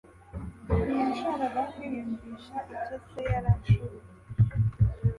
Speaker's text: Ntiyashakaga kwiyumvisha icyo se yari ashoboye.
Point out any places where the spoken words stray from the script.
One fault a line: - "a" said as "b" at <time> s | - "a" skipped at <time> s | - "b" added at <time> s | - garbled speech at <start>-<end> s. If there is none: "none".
none